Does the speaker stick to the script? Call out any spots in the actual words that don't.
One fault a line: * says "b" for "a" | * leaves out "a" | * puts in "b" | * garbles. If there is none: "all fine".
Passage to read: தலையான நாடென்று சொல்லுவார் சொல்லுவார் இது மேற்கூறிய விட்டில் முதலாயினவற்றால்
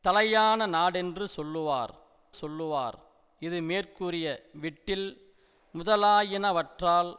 all fine